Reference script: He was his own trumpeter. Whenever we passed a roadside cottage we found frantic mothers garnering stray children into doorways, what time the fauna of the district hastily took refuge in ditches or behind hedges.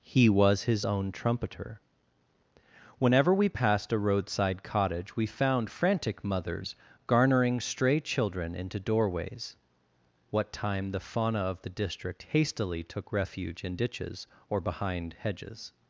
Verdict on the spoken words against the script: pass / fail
pass